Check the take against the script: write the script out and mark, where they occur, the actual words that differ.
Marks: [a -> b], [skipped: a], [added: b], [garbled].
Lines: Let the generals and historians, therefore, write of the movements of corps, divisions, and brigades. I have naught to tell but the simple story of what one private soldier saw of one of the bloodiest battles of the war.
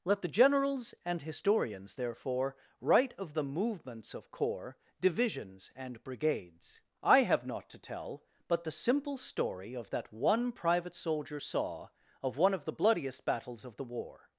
Let the generals and historians, therefore, write of the movements of corps, divisions, and brigades. I have naught to tell but the simple story of [what -> that] one private soldier saw of one of the bloodiest battles of the war.